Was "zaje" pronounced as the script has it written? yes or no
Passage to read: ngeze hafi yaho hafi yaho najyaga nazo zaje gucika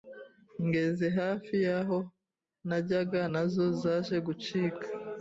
yes